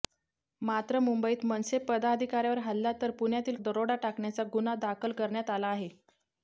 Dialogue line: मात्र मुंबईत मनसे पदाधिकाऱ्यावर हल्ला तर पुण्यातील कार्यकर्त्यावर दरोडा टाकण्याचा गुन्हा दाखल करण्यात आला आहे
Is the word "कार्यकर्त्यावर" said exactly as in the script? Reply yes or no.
no